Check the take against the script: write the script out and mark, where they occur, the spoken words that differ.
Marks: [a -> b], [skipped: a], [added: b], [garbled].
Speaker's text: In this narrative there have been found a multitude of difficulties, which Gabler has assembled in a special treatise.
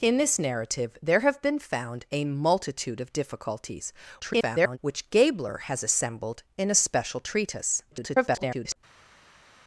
In this narrative there have been found a multitude of difficulties, [garbled] which Gabler has assembled in a special treatise. [garbled]